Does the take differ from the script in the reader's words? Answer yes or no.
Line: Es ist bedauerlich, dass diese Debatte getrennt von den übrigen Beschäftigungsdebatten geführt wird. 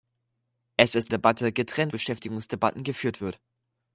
yes